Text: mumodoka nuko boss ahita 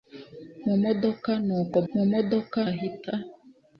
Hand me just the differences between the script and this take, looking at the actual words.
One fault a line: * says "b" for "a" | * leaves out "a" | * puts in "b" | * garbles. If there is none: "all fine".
* says "mumodoka" for "boss"